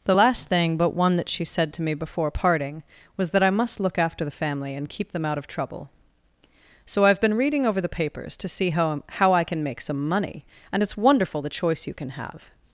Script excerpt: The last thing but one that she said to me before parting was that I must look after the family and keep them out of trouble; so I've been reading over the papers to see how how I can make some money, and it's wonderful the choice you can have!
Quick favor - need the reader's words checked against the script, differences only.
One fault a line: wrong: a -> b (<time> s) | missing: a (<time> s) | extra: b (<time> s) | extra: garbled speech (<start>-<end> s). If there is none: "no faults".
no faults